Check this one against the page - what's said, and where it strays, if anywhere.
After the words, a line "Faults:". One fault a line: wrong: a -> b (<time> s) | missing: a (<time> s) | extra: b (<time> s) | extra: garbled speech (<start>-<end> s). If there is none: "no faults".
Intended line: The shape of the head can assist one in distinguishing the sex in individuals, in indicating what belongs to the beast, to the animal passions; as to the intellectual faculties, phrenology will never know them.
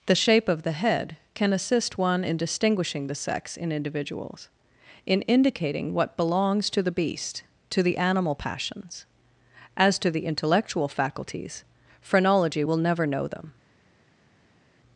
The shape of the head can assist one in distinguishing the sex in individuals, in indicating what belongs to the beast, to the animal passions; as to the intellectual faculties, phrenology will never know them.
Faults:
no faults